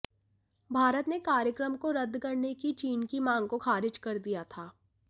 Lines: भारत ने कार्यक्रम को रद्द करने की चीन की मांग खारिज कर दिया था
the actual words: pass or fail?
fail